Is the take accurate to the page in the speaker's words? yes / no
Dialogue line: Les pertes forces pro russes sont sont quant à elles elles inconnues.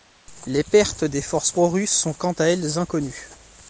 no